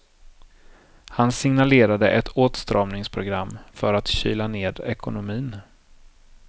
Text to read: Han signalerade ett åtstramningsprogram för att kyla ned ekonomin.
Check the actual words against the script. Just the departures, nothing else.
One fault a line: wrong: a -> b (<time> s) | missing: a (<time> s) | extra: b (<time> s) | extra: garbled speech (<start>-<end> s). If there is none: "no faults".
no faults